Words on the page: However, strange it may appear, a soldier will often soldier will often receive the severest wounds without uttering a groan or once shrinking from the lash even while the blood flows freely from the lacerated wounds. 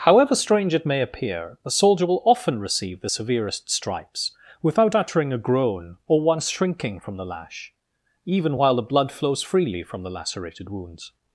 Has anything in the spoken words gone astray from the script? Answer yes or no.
yes